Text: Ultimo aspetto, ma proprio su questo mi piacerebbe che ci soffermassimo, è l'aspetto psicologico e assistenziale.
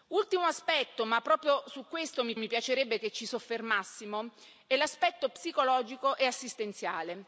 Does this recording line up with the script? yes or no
no